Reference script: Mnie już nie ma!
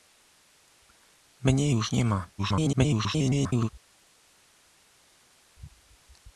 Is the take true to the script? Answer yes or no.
no